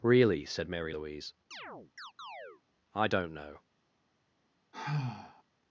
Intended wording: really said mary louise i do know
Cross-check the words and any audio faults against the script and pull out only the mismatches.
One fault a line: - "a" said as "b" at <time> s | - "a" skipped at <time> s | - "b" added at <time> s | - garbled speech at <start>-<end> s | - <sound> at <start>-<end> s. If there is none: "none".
- chirp at 1.5-2.6 s
- "do" said as "don't" at 3.1 s
- sigh at 4.7-5.4 s